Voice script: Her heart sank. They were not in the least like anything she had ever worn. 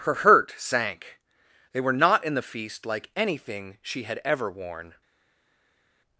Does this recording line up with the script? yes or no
no